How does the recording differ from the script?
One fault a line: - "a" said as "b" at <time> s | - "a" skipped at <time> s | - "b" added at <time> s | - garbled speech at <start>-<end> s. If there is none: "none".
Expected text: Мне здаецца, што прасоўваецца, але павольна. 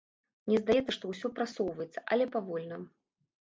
- "ўсё" added at 1.1 s